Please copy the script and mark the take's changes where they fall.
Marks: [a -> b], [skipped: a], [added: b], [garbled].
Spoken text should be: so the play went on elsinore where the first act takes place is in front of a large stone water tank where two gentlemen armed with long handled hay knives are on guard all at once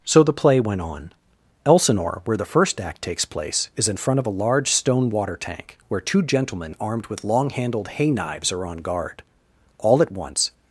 so the play went on elsinore where the first act takes place is in front of a large stone water tank where two gentlemen armed with long handled hay knives are on guard all at once